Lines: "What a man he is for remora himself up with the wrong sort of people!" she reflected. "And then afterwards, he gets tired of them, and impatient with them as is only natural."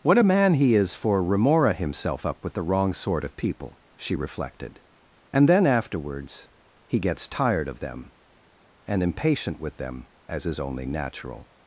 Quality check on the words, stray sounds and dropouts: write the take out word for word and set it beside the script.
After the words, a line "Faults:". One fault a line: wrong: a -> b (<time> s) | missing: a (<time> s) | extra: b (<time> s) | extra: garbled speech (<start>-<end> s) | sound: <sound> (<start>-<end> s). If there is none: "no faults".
"What a man he is for remora himself up with the wrong sort of people!" she reflected. "And then afterwards, he gets tired of them, and impatient with them as is only natural."
Faults:
no faults